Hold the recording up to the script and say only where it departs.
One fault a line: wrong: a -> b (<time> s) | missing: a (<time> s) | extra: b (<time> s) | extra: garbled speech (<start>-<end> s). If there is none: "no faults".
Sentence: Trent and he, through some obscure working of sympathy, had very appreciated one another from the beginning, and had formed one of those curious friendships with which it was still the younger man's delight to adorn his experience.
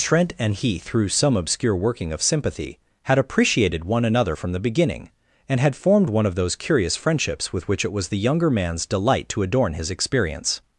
missing: very (3.2 s)
missing: still (8.1 s)